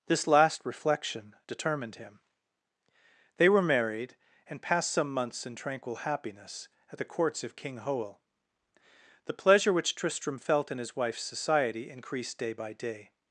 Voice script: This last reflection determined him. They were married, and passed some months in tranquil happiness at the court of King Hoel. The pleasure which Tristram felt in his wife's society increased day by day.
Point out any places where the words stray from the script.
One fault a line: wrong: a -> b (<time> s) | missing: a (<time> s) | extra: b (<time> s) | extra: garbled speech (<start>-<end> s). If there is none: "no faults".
wrong: court -> courts (7.0 s)